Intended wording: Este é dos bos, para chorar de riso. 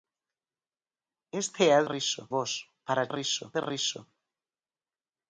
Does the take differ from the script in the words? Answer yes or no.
yes